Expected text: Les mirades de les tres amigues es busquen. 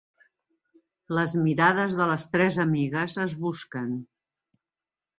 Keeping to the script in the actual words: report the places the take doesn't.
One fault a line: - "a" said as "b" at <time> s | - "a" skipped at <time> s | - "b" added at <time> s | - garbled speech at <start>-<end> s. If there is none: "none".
none